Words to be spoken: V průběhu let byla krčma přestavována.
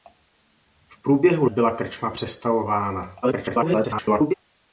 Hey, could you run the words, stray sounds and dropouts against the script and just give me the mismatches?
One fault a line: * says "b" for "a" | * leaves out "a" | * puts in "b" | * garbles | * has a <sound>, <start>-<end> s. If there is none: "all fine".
* leaves out "let"
* garbles